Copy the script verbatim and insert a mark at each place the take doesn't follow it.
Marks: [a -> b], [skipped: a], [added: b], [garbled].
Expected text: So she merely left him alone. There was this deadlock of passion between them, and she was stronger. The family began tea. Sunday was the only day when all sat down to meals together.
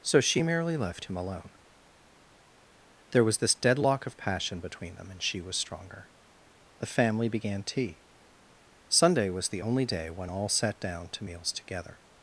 So she merely left him alone. There was this deadlock of passion between them, and she was stronger. The family began tea. Sunday was the only day when all sat down to meals together.